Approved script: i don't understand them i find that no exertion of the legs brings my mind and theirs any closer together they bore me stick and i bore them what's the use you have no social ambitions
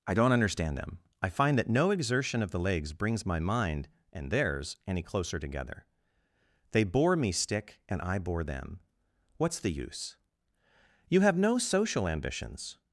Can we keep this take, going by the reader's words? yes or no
yes